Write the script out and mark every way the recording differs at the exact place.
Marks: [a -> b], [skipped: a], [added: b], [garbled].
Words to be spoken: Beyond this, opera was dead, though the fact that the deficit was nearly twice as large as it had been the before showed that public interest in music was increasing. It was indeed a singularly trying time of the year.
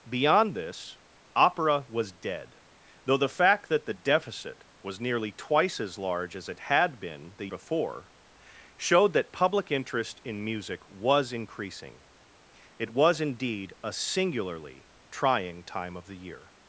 Beyond this, opera was dead, though the fact that the deficit was nearly twice as large as it had been the before showed that public interest in music was increasing. It was indeed a singularly trying time of the year.